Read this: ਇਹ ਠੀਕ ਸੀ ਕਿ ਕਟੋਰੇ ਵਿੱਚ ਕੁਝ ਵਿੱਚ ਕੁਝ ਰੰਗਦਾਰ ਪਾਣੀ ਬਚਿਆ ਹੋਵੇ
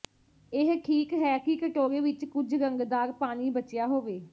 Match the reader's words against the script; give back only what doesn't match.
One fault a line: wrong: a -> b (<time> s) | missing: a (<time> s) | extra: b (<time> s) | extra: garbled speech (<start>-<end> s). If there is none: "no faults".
wrong: ਸੀ -> ਹੈ (1.1 s)
missing: ਵਿੱਚ ਕੁਝ (2.5 s)